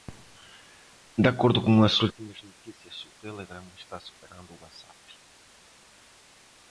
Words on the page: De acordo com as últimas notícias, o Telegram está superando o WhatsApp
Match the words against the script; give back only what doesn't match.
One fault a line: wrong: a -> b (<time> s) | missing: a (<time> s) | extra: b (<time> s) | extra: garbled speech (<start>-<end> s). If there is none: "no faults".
no faults